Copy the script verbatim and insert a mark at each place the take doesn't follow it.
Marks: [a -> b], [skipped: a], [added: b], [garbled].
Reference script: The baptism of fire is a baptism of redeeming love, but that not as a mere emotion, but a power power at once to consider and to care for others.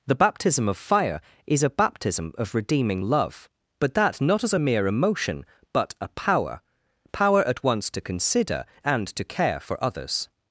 The baptism of fire is a baptism of redeeming love, but that not as a mere emotion, but a power power at once to consider and to care for others.